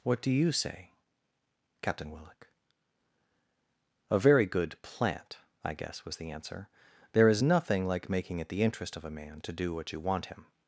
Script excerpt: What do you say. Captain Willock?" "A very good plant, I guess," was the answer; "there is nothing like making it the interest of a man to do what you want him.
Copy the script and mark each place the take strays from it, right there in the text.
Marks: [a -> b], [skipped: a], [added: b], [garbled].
What do you say. Captain Willock?" "A very good plant, I guess," was the answer; "there is nothing like making it the interest of a man to do what you want him.